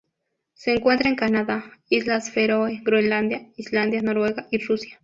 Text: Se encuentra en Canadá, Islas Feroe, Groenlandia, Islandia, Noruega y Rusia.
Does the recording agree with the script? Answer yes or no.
yes